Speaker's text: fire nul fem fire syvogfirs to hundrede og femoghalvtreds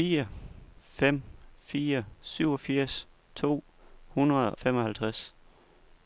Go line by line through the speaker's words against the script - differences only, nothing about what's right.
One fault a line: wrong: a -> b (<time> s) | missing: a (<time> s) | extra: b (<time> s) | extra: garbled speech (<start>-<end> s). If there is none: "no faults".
missing: nul (0.3 s)
missing: og (4.6 s)